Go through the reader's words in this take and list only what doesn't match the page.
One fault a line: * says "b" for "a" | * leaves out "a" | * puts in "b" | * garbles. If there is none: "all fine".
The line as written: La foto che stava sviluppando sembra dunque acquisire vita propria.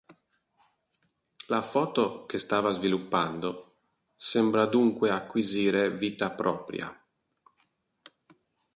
all fine